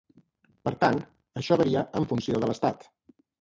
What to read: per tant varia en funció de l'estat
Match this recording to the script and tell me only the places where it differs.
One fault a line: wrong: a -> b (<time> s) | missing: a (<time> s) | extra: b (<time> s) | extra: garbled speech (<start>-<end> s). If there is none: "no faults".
extra: això (1.4 s)